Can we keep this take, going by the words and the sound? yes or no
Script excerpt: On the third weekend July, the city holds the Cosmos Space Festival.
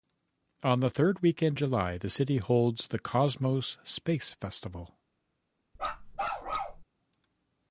no